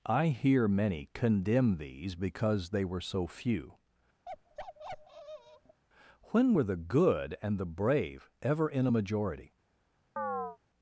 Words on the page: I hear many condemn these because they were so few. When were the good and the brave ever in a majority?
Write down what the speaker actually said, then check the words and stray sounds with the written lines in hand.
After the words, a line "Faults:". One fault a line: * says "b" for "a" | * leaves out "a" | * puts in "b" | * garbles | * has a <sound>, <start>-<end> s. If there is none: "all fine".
I hear many condemn these because they were so few. When were the good and the brave ever in a majority?
Faults:
* has a bark, 4.3-5.8 s
* has a chirp, 10.2-10.6 s